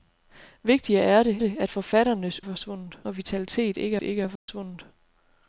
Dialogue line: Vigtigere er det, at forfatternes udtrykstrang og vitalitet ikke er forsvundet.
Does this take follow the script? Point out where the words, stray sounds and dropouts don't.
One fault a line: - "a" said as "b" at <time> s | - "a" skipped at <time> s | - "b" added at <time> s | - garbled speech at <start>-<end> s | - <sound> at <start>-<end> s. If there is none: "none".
- "det" added at 1.4 s
- "udtrykstrang" said as "forsvundet" at 2.4 s
- "ikke" added at 4.0 s
- dropout at 4.4-4.5 s